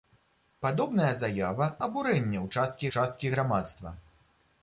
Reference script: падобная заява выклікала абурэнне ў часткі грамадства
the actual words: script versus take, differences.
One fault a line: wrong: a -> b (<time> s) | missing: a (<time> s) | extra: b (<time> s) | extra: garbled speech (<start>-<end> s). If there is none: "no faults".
missing: выклікала (1.7 s)
extra: часткі (3.0 s)